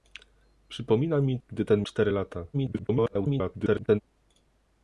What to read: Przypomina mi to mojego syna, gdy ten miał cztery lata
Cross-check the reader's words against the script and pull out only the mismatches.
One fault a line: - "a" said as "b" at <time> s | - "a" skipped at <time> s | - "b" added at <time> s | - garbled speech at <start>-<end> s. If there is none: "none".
- "to mojego syna" skipped at 1.4 s
- "miał" skipped at 1.8 s
- garbled speech at 2.5-4.0 s